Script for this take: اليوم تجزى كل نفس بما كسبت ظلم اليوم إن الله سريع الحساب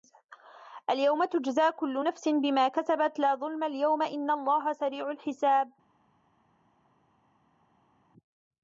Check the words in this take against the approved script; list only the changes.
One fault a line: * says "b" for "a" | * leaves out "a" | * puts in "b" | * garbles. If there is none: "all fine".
* puts in "لا"